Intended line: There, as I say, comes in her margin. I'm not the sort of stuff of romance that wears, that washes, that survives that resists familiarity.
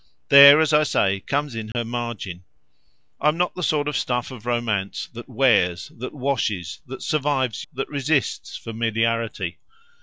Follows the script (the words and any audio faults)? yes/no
no